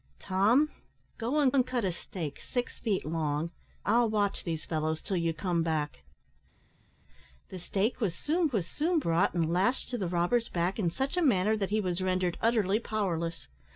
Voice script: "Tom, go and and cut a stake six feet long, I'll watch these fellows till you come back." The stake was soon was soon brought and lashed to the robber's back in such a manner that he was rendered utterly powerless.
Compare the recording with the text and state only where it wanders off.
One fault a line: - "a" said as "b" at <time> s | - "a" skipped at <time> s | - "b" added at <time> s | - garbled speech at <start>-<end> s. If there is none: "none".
none